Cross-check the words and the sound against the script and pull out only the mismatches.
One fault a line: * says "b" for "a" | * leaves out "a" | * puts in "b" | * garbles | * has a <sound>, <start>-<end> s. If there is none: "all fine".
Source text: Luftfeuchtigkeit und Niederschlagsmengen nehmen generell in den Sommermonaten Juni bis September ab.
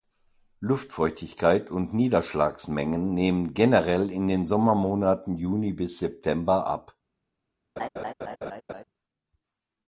* has a laugh, 7.8-8.8 s